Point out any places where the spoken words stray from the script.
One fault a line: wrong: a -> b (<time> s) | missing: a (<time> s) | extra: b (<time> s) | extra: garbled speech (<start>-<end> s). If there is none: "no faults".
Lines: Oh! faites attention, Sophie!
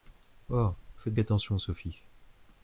no faults